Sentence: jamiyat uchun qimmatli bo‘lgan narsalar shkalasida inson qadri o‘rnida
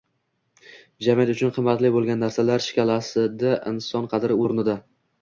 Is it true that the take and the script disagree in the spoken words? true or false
false